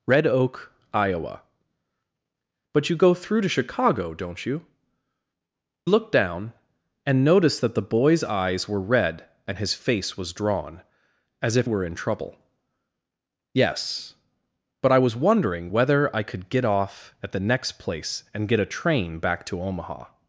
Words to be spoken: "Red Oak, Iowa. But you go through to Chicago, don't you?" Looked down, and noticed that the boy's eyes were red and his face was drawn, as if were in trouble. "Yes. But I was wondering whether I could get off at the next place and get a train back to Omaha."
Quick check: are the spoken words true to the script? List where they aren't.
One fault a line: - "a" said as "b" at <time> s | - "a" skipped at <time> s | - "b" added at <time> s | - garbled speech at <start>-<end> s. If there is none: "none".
none